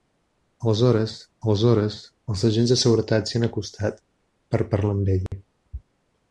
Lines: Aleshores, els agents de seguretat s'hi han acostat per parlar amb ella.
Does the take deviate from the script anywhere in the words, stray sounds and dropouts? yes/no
yes